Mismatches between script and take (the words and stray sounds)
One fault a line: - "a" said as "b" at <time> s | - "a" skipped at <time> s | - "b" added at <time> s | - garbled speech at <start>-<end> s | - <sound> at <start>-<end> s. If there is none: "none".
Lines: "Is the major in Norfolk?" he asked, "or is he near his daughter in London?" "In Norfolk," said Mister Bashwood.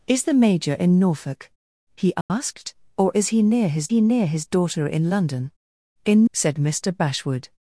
- dropout at 2.2-2.3 s
- "he near his" added at 3.9 s
- "Norfolk" skipped at 6.3 s